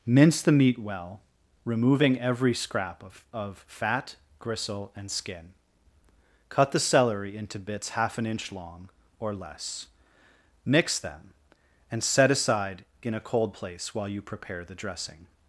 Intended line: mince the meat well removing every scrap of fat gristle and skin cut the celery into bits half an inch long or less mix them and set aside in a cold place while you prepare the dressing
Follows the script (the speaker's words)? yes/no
no